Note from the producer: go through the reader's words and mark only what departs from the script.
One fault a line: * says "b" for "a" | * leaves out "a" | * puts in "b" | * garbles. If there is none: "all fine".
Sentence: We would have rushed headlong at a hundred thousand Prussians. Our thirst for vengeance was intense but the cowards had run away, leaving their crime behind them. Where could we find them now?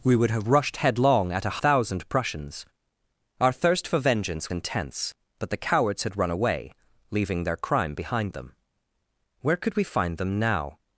* leaves out "hundred"
* leaves out "was"